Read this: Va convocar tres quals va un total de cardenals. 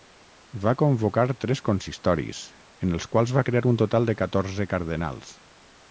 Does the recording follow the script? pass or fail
fail